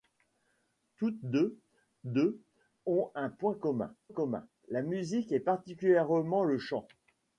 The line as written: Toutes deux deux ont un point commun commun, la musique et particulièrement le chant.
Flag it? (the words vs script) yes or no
no